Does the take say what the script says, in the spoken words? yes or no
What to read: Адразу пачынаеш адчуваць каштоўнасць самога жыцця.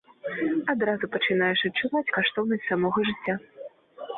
yes